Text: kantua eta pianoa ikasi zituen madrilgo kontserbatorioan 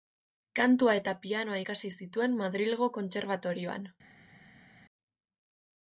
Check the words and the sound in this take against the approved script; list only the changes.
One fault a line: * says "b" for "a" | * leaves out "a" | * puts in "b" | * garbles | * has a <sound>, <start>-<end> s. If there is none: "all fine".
all fine